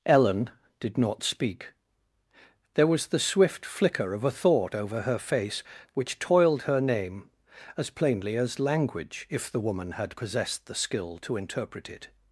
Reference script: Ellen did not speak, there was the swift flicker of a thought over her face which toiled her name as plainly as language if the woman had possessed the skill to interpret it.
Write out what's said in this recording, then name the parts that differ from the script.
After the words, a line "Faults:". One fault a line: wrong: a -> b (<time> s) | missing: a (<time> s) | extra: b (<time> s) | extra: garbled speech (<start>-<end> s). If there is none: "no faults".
Ellen did not speak, there was the swift flicker of a thought over her face which toiled her name as plainly as language if the woman had possessed the skill to interpret it.
Faults:
no faults